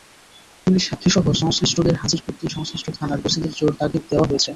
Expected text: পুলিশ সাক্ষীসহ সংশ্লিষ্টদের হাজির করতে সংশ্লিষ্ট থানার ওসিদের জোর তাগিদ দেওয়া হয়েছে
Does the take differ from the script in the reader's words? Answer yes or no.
no